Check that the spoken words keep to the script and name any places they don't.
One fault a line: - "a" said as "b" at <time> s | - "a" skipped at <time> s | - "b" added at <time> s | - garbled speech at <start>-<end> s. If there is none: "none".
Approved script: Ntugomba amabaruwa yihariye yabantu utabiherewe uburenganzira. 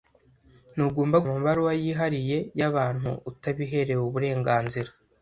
none